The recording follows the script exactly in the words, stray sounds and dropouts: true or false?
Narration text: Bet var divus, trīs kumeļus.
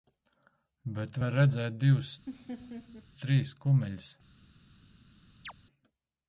false